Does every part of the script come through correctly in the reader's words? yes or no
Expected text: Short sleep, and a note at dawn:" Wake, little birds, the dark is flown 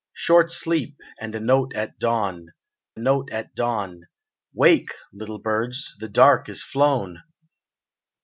no